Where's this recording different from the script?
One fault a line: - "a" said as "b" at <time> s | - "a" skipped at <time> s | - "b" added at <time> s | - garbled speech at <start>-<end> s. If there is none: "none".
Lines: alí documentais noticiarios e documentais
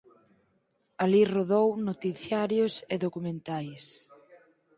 - "documentais" said as "rodou" at 1.4 s